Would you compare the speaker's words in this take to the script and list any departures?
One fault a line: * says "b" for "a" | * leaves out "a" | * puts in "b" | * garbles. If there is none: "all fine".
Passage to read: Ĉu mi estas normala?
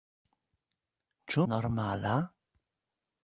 * leaves out "mi estas"